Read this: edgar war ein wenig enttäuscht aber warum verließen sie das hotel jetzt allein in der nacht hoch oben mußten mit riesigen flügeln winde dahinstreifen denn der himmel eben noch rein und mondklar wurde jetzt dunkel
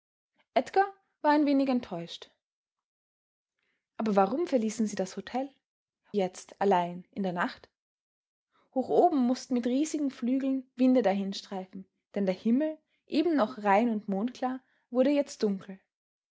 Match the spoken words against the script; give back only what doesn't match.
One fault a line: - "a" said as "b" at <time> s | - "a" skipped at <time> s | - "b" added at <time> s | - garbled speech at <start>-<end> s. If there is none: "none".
none